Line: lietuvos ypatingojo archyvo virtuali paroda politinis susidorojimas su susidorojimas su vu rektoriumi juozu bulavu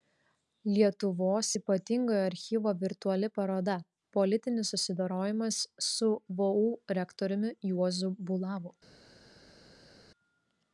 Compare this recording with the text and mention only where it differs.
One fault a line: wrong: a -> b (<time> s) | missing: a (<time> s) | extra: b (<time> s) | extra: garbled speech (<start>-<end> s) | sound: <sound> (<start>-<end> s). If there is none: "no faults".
missing: susidorojimas su (6.1 s)